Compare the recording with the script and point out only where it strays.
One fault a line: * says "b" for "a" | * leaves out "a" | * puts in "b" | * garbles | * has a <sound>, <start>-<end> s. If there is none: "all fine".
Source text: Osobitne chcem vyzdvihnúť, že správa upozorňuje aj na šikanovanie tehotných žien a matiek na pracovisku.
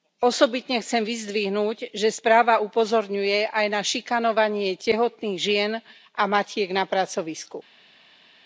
all fine